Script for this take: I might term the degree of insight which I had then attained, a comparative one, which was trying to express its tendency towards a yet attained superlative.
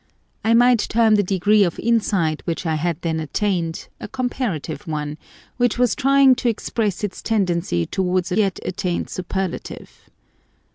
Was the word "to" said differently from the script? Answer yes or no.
no